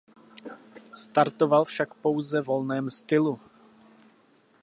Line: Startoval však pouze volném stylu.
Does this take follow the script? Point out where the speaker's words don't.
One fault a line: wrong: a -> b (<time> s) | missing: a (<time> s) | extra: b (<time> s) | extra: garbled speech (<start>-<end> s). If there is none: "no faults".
no faults